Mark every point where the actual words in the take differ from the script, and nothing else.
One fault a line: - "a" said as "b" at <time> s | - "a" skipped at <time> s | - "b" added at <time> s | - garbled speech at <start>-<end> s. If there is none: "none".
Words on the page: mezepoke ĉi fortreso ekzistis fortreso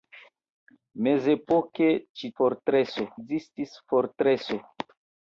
none